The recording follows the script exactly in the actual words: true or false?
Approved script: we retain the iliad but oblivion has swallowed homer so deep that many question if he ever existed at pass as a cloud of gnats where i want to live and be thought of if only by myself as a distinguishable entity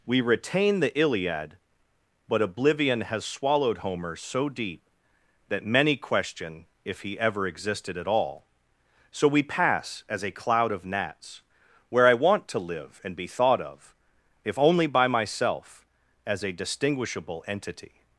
false